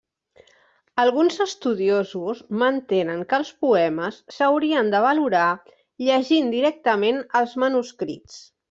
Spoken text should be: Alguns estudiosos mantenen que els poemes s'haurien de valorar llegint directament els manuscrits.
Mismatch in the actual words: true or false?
false